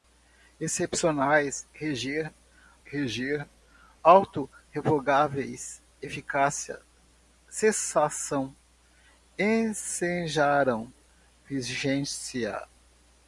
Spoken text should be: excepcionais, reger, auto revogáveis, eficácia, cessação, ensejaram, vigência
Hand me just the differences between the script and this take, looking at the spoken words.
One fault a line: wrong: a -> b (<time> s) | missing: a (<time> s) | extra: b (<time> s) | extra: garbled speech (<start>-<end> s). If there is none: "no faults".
extra: reger (2.8 s)